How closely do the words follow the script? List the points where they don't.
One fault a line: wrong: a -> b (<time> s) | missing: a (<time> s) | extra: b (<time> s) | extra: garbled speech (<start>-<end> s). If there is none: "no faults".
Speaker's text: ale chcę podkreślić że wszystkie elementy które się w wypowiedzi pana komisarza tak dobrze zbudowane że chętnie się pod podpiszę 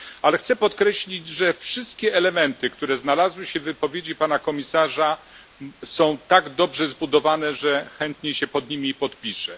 extra: znalazły (3.0 s)
extra: są (5.8 s)
extra: nimi (8.7 s)